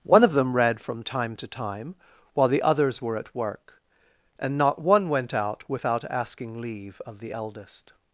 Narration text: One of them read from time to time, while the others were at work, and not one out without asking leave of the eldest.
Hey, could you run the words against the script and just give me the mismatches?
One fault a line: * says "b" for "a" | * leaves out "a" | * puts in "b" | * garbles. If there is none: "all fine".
* puts in "went"